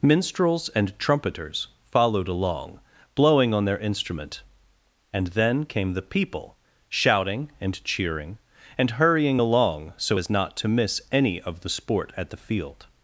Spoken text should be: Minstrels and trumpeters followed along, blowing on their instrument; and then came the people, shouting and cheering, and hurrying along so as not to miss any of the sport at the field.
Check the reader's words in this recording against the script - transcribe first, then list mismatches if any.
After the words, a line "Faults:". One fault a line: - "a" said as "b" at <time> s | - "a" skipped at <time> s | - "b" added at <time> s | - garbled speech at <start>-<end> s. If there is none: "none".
Minstrels and trumpeters followed along, blowing on their instrument; and then came the people, shouting and cheering, and hurrying along so as not to miss any of the sport at the field.
Faults:
none